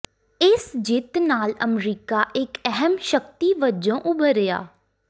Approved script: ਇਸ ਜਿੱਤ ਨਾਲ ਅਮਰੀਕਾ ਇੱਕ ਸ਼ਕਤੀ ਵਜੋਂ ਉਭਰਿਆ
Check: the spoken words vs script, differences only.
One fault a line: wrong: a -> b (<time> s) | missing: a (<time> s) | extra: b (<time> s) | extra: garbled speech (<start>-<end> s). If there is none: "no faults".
extra: ਅਹਿਮ (2.7 s)